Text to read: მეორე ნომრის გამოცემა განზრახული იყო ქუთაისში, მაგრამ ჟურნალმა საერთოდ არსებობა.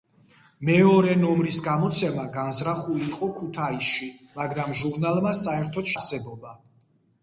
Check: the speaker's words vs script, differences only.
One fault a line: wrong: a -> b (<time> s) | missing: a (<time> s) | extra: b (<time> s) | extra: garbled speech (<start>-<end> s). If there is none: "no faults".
no faults